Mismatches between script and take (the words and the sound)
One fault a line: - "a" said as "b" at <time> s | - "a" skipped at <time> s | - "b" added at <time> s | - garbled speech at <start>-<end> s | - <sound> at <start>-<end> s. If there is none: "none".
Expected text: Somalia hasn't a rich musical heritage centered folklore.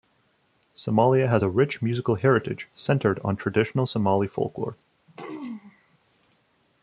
- "hasn't" said as "has" at 1.3 s
- "on traditional Somali" added at 3.2 s
- throat clearing at 5.1-6.0 s